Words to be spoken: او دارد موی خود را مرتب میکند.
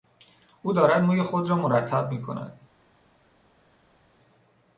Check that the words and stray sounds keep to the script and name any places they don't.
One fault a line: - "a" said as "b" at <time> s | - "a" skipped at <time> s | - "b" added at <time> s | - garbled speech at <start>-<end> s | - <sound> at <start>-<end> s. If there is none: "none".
none